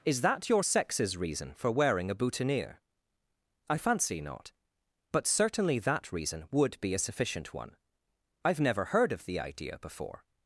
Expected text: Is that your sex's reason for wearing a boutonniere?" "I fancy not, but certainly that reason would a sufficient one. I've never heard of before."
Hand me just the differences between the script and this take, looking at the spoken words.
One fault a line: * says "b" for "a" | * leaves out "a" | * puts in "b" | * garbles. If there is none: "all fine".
* puts in "be"
* puts in "the idea"